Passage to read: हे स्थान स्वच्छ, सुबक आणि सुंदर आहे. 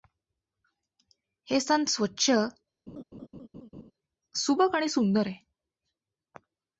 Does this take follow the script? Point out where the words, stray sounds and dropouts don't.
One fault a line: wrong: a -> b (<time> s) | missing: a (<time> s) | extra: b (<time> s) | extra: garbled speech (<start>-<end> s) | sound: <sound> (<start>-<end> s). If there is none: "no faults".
sound: laugh (2.9-3.9 s)